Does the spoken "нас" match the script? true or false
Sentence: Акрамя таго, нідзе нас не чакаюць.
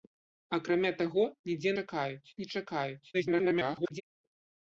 false